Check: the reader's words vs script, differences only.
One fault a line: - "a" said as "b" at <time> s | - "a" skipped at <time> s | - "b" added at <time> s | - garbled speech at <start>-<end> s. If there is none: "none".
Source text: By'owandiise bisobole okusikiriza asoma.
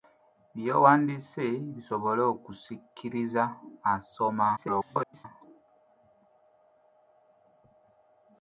- garbled speech at 4.6-5.3 s